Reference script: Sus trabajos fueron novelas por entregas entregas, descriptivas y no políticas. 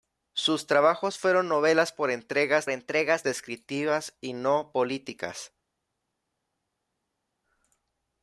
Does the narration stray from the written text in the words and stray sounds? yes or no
no